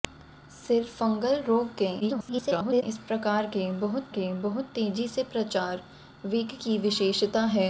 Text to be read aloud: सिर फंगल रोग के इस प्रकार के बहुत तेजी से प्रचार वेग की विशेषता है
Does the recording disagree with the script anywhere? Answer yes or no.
yes